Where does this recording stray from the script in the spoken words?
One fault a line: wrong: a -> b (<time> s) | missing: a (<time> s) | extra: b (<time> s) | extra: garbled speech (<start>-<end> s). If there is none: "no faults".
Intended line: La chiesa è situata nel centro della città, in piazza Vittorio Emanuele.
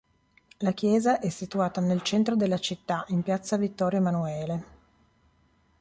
no faults